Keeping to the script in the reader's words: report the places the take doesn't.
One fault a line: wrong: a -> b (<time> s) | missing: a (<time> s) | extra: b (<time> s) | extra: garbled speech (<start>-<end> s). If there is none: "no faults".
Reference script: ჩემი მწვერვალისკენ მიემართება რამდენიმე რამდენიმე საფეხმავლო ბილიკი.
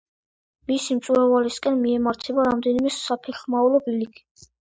wrong: ჩემი -> მისი (0.7 s)
missing: რამდენიმე (2.9 s)